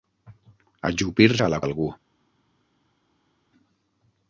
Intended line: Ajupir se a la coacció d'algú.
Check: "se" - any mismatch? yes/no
yes